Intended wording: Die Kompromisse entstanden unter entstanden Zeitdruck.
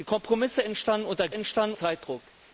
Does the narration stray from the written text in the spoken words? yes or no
no